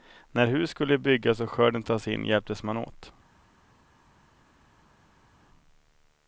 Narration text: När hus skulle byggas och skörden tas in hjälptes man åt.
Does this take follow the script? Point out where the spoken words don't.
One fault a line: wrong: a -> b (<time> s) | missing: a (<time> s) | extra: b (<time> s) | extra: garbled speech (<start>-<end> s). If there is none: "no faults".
no faults